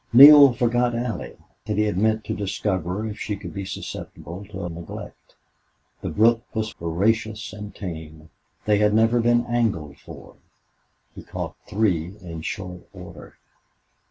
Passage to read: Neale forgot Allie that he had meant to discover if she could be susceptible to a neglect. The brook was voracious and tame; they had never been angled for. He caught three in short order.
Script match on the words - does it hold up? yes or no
yes